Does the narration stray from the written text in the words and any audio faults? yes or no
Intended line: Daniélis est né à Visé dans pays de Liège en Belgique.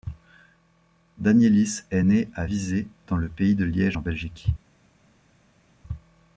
yes